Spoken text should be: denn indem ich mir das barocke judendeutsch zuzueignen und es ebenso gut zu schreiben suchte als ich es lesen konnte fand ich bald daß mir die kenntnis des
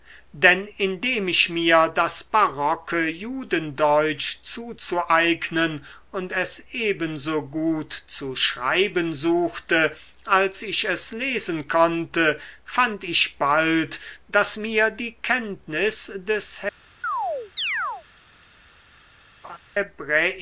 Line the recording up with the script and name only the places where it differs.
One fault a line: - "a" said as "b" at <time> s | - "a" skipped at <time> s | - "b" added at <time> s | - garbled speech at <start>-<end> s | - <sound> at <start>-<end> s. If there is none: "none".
- chirp at 17.0-18.1 s
- laugh at 19.4-19.6 s